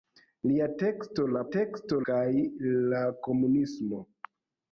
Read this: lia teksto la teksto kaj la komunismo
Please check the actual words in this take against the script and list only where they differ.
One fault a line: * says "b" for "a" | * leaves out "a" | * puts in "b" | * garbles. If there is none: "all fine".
all fine